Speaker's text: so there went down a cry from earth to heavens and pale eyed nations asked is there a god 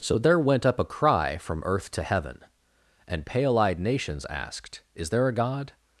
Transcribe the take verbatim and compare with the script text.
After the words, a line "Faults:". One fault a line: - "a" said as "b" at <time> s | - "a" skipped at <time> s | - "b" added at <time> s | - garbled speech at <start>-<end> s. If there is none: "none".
so there went up a cry from earth to heaven and pale eyed nations asked is there a god
Faults:
- "down" said as "up" at 0.7 s
- "heavens" said as "heaven" at 2.0 s